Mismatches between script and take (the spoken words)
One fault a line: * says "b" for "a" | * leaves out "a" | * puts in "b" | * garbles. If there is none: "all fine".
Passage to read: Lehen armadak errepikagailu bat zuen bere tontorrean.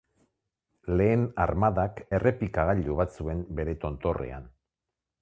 all fine